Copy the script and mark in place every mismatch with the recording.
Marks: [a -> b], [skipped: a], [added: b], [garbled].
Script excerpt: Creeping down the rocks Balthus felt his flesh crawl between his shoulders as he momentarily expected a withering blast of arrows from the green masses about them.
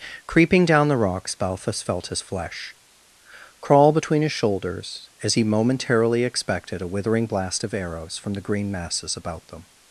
Creeping down the rocks Balthus felt his flesh crawl between his shoulders as he momentarily expected a withering blast of arrows from the green masses about them.